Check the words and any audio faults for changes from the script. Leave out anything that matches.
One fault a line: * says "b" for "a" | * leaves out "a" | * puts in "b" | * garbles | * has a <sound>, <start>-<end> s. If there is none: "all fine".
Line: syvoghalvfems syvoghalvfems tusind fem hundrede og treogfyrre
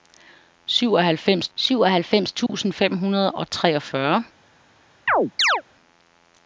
* has a dropout, 2.5-2.5 s
* has a chirp, 5.1-5.6 s